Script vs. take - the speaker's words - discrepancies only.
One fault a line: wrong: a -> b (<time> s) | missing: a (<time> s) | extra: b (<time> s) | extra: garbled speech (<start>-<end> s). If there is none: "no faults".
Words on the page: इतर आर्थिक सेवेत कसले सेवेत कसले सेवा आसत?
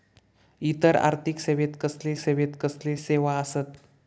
no faults